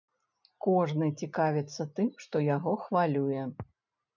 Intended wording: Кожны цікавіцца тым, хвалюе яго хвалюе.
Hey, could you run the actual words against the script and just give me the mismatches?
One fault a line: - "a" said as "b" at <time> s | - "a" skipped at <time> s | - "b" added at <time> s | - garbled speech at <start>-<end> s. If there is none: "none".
- "хвалюе" said as "што" at 2.2 s